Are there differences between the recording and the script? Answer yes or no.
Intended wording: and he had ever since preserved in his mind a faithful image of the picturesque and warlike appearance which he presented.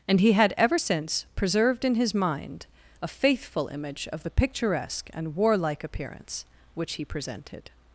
no